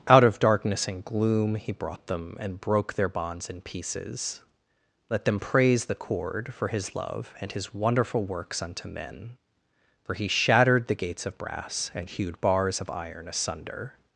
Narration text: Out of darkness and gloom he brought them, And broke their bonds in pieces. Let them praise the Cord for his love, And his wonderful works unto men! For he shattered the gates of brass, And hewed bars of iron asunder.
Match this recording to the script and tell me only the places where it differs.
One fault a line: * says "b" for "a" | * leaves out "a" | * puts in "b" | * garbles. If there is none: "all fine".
all fine